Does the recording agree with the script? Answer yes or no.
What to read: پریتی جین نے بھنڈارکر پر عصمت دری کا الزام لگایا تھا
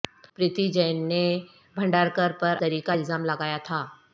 no